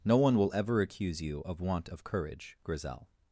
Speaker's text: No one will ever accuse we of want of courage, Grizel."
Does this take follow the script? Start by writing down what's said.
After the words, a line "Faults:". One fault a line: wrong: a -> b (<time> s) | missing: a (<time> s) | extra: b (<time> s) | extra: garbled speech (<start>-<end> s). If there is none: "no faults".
No one will ever accuse you of want of courage, Grizel."
Faults:
wrong: we -> you (1.2 s)